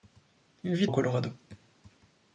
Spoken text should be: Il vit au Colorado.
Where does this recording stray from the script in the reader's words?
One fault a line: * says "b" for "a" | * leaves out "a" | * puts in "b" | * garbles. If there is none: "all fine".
all fine